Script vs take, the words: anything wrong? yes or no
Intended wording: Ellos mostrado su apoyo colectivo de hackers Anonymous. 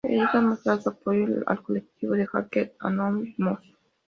yes